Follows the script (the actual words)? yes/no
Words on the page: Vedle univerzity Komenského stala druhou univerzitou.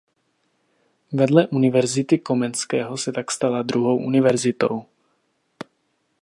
no